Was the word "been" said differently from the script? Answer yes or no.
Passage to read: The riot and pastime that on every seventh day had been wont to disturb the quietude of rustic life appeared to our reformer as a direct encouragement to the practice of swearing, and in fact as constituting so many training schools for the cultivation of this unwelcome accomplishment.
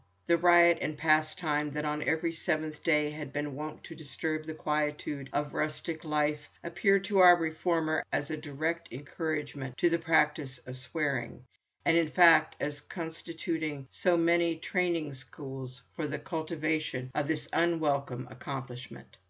no